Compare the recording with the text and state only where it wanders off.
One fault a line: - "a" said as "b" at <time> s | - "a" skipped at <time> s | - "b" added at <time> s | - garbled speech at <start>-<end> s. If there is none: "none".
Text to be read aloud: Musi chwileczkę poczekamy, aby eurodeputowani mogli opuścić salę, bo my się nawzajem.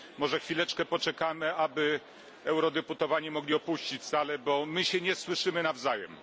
- "Musi" said as "Może" at 0.2 s
- "nie słyszymy" added at 5.0 s